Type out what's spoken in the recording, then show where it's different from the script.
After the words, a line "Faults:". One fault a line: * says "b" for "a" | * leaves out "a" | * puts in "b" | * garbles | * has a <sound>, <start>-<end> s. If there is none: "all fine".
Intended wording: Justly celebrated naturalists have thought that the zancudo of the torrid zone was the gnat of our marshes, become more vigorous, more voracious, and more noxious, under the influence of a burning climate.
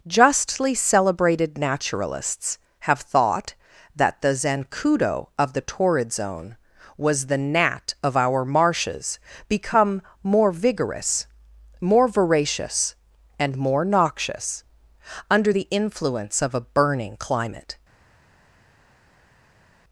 Justly celebrated naturalists have thought that the zancudo of the torrid zone was the gnat of our marshes, become more vigorous, more voracious, and more noxious, under the influence of a burning climate.
Faults:
all fine